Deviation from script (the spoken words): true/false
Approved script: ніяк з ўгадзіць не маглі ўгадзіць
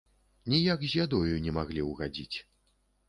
true